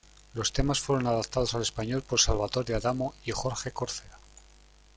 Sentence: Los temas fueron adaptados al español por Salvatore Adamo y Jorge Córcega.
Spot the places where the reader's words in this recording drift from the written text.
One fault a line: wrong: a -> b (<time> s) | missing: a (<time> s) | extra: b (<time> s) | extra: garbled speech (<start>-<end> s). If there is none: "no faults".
no faults